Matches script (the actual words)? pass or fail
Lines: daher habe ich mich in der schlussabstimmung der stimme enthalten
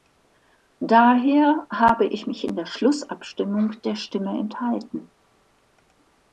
pass